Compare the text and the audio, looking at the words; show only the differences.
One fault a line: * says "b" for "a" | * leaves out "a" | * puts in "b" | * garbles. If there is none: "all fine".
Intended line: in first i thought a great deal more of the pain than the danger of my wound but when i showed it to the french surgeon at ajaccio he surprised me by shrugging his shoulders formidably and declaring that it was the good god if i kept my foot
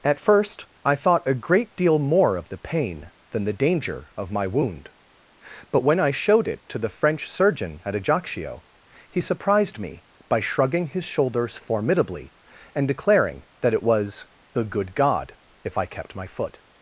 * says "at" for "in"